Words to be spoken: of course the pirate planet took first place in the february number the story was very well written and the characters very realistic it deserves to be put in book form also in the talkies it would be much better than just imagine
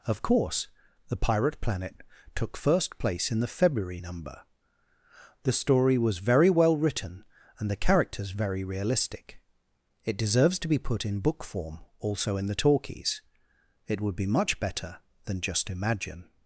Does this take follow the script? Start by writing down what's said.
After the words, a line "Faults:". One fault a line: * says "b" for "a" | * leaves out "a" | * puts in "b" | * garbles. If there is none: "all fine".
of course the pirate planet took first place in the february number the story was very well written and the characters very realistic it deserves to be put in book form also in the talkies it would be much better than just imagine
Faults:
all fine